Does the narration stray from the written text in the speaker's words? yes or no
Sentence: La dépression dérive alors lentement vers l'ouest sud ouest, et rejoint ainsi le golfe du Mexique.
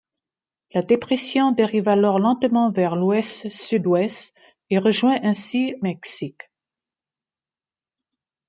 yes